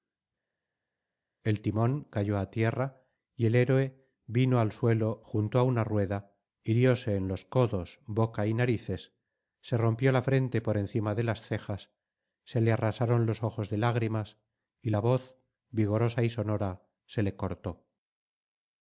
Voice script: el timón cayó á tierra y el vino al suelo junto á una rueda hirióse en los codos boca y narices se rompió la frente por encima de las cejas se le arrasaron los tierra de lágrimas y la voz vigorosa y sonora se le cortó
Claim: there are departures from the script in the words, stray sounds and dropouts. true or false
true